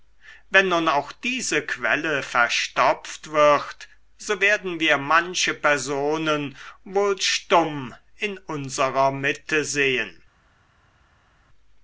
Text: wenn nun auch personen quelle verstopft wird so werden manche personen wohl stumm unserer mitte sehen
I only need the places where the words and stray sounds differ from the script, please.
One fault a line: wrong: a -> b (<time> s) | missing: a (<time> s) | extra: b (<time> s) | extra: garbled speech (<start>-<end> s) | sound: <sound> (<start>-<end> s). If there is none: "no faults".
wrong: personen -> diese (1.1 s)
extra: wir (4.8 s)
extra: in (8.2 s)